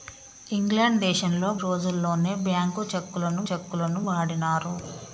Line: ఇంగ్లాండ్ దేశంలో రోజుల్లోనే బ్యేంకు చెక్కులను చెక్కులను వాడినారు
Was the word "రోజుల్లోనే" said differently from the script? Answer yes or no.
no